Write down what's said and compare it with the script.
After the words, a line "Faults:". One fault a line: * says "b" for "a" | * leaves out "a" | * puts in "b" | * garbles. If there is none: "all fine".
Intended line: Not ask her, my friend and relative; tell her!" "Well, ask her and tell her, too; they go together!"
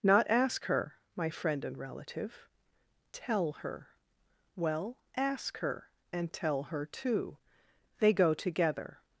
Not ask her, my friend and relative; tell her!" "Well, ask her and tell her, too; they go together!"
Faults:
all fine